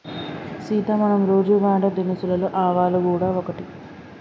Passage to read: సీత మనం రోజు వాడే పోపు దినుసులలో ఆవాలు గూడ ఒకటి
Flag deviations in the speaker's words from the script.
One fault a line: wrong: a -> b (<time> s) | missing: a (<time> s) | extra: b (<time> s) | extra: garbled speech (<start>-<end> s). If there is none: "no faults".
missing: పోపు (1.9 s)